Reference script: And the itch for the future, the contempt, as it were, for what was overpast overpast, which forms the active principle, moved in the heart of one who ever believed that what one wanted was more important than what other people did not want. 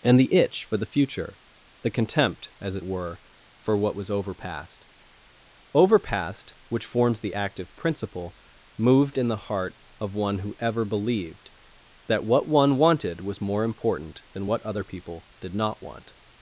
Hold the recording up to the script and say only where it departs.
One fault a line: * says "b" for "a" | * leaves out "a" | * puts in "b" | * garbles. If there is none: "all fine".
all fine